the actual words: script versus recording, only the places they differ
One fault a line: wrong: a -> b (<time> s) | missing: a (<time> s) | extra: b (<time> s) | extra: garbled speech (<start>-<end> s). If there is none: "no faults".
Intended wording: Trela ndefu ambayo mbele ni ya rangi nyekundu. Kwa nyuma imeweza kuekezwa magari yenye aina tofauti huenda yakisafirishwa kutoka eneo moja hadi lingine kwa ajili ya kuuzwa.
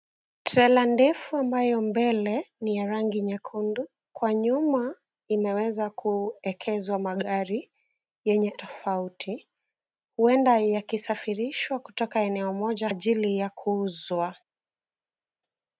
missing: aina (8.5 s)
missing: hadi lingine kwa (12.9 s)